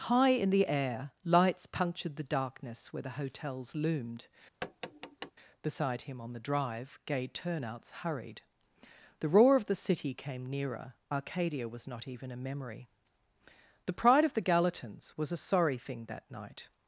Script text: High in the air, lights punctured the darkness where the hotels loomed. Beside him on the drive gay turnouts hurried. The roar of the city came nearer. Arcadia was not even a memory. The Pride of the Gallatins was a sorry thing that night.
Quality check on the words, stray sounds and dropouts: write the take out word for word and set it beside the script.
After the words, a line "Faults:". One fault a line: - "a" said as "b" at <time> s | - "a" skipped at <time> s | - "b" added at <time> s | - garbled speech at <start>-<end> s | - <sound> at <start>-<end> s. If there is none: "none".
High in the air, lights punctured the darkness where the hotels loomed. Beside him on the drive gay turnouts hurried. The roar of the city came nearer. Arcadia was not even a memory. The Pride of the Gallatins was a sorry thing that night.
Faults:
- tap at 4.6-5.3 s